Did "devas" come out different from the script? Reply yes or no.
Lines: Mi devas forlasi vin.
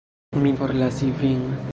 yes